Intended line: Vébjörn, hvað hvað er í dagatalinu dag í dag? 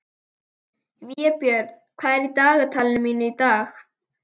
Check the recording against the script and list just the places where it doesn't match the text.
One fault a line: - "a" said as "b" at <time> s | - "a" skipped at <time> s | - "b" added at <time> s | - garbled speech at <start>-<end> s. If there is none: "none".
- "hvað" skipped at 2.2 s
- "dag" said as "mínu" at 3.1 s